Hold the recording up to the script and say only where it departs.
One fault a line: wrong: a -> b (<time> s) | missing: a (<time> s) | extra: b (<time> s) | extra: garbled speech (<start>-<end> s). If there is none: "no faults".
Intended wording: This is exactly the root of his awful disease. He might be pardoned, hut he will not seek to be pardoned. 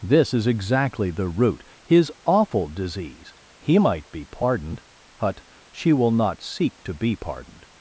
missing: of (1.6 s)
wrong: he -> she (5.7 s)